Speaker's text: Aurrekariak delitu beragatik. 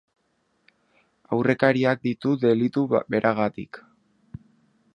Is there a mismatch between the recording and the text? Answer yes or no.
yes